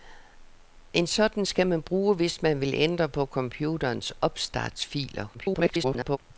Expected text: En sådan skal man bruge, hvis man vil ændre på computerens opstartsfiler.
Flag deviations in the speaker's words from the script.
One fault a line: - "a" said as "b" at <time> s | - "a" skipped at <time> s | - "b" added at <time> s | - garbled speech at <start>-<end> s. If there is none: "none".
- garbled speech at 5.3-6.2 s